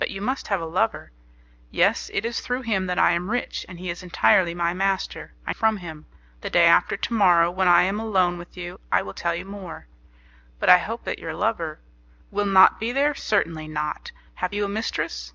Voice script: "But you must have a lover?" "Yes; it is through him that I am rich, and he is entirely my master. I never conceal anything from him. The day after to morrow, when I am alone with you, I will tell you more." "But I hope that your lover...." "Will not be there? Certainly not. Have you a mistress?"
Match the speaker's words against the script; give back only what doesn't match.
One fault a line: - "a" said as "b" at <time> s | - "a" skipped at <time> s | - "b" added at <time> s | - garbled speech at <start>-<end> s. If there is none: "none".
- "never conceal anything" skipped at 5.5 s